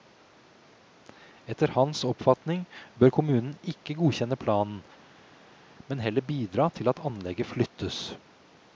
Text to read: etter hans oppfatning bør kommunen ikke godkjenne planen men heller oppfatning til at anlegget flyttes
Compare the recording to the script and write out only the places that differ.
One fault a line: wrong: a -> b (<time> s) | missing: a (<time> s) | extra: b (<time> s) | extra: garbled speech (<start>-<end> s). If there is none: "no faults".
wrong: oppfatning -> bidra (6.3 s)